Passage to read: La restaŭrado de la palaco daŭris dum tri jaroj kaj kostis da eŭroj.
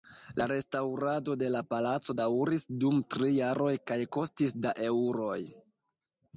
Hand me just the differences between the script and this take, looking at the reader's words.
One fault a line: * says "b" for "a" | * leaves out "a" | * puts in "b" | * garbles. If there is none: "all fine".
all fine